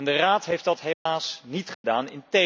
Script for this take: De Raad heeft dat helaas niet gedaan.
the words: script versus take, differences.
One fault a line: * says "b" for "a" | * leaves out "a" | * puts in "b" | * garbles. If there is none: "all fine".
all fine